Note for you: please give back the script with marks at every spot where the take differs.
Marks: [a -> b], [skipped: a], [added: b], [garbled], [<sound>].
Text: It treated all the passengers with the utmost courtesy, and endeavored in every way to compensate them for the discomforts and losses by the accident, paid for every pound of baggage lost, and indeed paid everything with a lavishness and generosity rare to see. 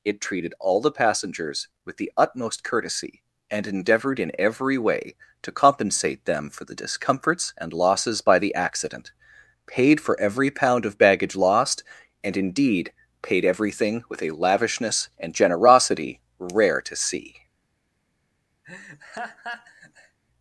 It treated all the passengers with the utmost courtesy, and endeavored in every way to compensate them for the discomforts and losses by the accident, paid for every pound of baggage lost, and indeed paid everything with a lavishness and generosity rare to see. [laugh]